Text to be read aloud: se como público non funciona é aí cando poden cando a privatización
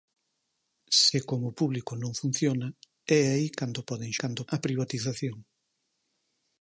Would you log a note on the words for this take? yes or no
no